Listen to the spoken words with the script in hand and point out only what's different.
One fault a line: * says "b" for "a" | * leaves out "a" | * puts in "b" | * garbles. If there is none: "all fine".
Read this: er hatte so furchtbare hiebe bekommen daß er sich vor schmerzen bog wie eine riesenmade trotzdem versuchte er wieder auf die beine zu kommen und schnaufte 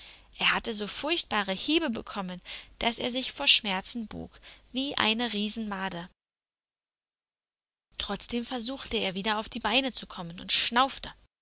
all fine